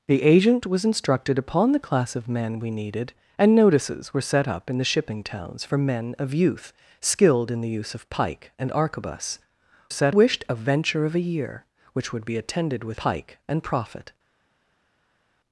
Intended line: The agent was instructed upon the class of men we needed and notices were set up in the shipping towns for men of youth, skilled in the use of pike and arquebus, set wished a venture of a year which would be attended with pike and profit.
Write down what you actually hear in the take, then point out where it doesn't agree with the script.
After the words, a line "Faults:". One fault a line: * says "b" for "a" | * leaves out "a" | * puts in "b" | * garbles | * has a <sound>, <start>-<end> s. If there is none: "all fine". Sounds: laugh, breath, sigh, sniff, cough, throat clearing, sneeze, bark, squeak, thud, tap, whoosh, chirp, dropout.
The agent was instructed upon the class of men we needed and notices were set up in the shipping towns for men of youth, skilled in the use of pike and arquebus, set wished a venture of a year which would be attended with pike and profit.
Faults:
all fine